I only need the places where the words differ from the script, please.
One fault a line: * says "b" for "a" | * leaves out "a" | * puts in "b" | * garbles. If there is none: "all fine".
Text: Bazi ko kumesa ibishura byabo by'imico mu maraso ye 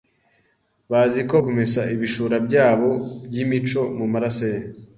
all fine